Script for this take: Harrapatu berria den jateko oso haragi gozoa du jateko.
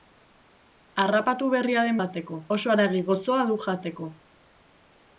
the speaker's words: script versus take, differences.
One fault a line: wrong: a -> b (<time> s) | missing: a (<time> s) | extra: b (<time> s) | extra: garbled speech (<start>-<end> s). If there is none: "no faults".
no faults